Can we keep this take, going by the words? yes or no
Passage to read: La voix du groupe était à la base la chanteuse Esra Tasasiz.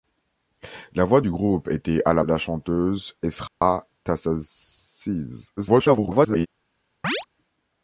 no